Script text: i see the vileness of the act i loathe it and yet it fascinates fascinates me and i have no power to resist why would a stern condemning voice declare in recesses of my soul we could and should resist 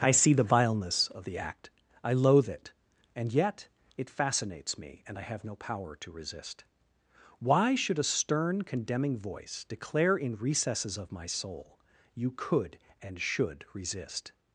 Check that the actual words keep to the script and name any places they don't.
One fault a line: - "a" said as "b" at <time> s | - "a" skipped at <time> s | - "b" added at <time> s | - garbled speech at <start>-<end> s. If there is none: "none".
- "fascinates" skipped at 4.8 s
- "would" said as "should" at 7.7 s
- "we" said as "you" at 12.1 s